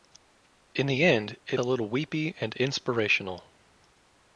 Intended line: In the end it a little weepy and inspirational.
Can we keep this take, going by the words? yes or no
yes